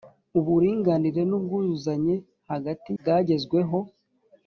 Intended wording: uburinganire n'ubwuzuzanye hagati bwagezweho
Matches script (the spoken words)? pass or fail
pass